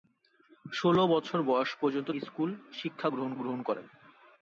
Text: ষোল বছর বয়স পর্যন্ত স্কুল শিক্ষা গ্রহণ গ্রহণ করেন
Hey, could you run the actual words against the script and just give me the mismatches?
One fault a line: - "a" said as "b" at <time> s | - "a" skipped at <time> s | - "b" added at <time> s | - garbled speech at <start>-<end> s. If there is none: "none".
none